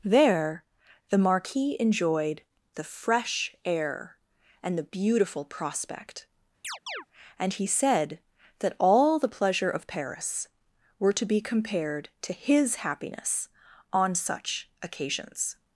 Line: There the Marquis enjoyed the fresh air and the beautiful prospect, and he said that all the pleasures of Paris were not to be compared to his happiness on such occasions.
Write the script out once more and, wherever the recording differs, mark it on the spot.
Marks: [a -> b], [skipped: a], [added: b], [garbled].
There the Marquis enjoyed the fresh air and the beautiful prospect, and he said that all the [pleasures -> pleasure] of Paris were [skipped: not] to be compared to his happiness on such occasions.